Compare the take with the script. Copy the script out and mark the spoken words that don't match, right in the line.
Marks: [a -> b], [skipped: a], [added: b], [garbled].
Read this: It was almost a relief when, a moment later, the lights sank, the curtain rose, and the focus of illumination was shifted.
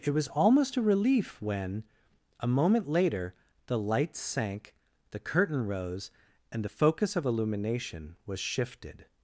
It was almost a relief when, a moment later, the lights sank, the curtain rose, and the focus of illumination was shifted.